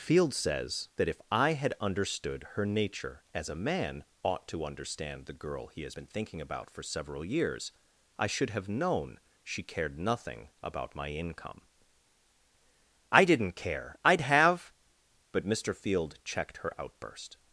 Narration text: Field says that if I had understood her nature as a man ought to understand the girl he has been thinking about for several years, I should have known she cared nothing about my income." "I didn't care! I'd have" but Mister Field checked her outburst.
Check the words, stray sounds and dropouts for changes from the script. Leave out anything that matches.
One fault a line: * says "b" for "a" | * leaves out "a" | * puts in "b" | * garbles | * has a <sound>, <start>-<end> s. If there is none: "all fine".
all fine